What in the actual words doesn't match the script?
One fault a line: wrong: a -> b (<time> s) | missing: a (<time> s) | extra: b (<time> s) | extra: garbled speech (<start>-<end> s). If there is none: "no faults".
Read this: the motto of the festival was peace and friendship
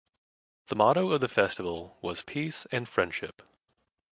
no faults